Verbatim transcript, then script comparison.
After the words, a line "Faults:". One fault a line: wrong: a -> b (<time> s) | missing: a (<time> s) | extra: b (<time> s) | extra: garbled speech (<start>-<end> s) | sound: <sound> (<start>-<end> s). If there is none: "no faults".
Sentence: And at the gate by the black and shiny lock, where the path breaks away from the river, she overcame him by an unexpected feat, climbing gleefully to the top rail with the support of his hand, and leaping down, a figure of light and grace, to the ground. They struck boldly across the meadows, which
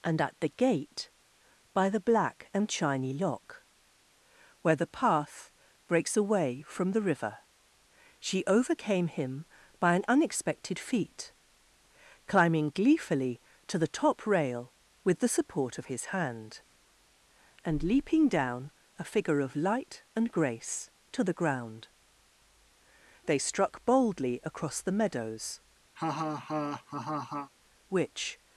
And at the gate by the black and shiny lock, where the path breaks away from the river, she overcame him by an unexpected feat, climbing gleefully to the top rail with the support of his hand, and leaping down, a figure of light and grace, to the ground. They struck boldly across the meadows, which
Faults:
sound: laugh (26.0-27.5 s)